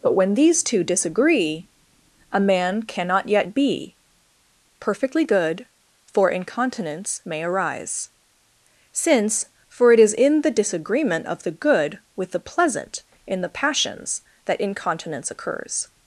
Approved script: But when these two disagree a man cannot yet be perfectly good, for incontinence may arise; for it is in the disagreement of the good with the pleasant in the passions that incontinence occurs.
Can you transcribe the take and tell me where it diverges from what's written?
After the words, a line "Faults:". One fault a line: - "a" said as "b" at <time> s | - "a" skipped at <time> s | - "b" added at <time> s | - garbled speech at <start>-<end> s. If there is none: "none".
But when these two disagree a man cannot yet be perfectly good, for incontinence may arise; since for it is in the disagreement of the good with the pleasant in the passions that incontinence occurs.
Faults:
- "since" added at 8.9 s